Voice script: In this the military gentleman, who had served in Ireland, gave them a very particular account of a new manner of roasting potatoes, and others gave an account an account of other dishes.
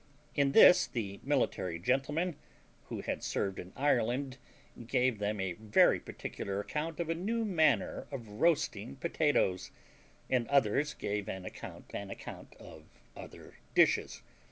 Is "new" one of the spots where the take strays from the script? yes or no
no